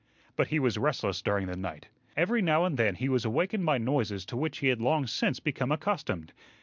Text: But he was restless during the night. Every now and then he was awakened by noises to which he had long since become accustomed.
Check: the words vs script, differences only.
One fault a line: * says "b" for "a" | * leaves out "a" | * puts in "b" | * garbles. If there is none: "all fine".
all fine